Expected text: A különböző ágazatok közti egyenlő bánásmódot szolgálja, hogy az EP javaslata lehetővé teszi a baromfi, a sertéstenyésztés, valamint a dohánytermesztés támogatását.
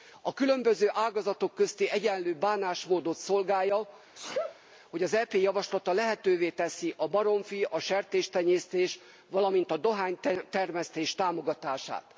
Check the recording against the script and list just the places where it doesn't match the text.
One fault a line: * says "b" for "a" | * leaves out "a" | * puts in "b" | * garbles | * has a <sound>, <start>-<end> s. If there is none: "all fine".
* has a sneeze, 4.1-4.6 s